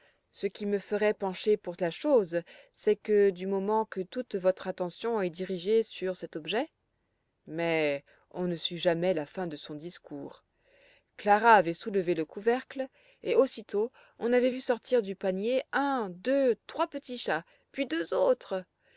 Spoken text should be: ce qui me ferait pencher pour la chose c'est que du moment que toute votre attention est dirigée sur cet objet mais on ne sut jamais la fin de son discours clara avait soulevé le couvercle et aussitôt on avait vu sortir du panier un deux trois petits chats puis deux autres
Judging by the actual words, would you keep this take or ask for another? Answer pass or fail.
pass